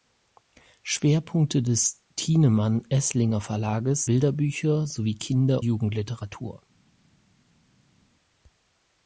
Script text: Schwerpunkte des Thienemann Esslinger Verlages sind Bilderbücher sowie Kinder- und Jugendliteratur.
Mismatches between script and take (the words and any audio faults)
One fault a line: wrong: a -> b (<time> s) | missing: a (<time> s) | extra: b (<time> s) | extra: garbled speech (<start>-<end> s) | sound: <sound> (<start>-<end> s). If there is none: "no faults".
missing: sind (4.1 s)
missing: und (5.6 s)